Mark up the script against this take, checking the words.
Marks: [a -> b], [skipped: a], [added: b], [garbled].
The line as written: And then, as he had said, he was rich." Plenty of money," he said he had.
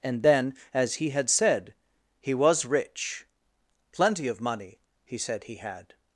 And then, as he had said, he was rich." Plenty of money," he said he had.